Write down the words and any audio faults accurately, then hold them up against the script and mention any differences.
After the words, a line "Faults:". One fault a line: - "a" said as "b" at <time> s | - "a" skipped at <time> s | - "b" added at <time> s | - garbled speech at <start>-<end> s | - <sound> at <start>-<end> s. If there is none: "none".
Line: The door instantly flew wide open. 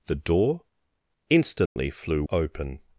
The door instantly flew open.
Faults:
- dropout at 1.7-1.8 s
- "wide" skipped at 2.2 s